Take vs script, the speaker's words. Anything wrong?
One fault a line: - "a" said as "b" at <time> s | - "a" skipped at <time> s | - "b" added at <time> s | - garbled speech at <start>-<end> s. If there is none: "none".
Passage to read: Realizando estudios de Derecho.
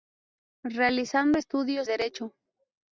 - "de" skipped at 1.9 s